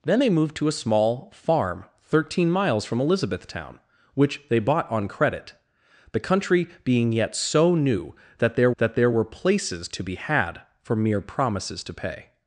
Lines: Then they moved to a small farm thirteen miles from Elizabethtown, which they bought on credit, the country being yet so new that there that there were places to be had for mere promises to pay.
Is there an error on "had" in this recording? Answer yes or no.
no